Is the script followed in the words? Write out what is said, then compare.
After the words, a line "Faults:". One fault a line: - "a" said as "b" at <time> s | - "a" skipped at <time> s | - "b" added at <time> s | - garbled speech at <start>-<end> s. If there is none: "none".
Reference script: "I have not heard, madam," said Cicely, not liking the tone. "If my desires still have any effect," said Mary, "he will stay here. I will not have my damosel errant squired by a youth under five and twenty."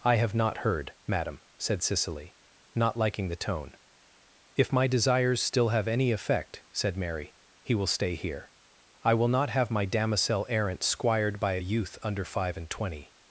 "I have not heard, madam," said Cicely, not liking the tone. "If my desires still have any effect," said Mary, "he will stay here. I will not have my damosel errant squired by a youth under five and twenty."
Faults:
none